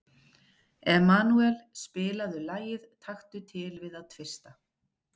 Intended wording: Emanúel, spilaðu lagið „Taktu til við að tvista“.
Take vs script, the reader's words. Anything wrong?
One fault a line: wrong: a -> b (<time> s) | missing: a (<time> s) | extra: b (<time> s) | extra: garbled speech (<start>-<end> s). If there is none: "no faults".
no faults